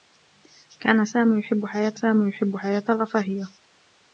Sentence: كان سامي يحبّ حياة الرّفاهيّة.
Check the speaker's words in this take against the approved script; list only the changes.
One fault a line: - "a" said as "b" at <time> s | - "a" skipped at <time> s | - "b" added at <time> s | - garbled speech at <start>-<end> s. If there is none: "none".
- "سامي يحبّ حياة" added at 1.9 s